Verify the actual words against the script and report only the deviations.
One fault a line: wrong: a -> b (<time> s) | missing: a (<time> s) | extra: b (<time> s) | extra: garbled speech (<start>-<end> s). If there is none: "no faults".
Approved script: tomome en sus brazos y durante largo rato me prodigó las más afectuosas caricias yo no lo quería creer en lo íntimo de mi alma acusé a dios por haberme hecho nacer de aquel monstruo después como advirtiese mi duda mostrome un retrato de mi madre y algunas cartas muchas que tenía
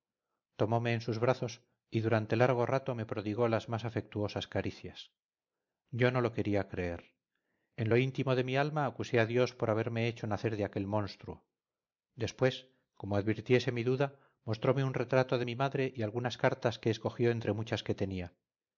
extra: que escogió entre (16.8 s)